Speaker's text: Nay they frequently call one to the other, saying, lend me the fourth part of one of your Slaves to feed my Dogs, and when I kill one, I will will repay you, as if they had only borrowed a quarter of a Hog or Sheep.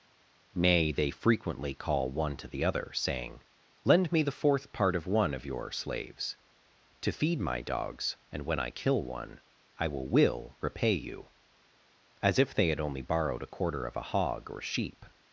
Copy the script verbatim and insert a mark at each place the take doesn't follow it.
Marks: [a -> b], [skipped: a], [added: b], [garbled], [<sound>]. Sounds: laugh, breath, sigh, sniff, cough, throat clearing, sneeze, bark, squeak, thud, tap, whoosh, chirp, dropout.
Nay they frequently call one to the other, saying, lend me the fourth part of one of your Slaves to feed my Dogs, and when I kill one, I will will repay you, as if they had only borrowed a quarter of a Hog or Sheep.